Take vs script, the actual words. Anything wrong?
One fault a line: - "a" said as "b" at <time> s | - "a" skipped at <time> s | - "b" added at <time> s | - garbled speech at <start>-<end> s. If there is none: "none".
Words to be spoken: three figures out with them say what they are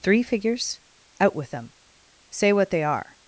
none